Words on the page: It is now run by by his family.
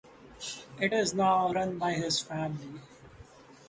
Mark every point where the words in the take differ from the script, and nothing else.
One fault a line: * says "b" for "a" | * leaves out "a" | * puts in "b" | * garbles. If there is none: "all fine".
* leaves out "by"